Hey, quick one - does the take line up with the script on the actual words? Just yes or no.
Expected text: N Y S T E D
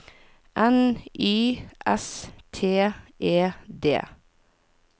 yes